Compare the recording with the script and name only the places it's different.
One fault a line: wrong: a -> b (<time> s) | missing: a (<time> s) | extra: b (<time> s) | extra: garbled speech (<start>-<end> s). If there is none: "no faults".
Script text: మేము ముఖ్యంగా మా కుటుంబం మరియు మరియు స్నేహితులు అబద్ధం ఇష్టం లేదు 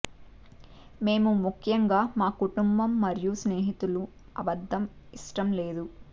missing: మరియు (3.3 s)